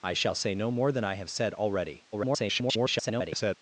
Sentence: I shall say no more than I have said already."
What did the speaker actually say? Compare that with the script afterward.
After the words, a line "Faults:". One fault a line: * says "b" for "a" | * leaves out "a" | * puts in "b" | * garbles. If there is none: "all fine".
I shall say no more than I have said already." [garbled]
Faults:
* garbles